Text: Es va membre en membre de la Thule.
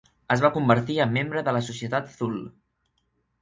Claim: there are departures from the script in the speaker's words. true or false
true